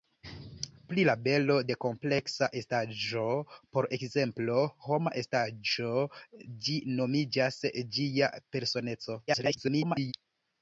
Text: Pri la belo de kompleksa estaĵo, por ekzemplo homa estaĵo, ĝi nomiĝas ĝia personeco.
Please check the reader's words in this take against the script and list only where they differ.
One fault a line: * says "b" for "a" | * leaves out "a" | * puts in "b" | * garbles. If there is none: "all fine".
* garbles